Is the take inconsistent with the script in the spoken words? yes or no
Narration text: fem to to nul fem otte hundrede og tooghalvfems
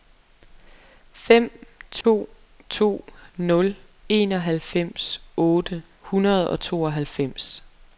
yes